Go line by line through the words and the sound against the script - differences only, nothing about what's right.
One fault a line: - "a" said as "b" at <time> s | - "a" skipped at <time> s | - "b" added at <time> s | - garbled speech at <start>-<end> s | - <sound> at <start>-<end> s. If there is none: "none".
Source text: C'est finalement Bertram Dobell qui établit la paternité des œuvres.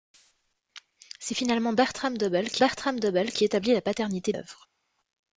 - "Bertram Dobell qui" added at 2.6 s
- "des" skipped at 4.3 s